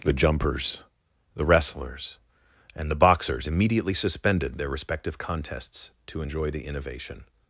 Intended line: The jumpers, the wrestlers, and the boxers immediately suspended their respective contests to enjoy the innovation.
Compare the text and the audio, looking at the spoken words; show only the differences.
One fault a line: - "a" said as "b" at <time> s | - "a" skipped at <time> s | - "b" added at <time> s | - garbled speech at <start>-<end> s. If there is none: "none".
none